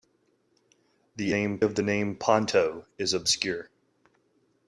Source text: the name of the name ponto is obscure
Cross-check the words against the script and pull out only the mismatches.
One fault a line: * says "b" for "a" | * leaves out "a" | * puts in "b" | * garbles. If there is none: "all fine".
all fine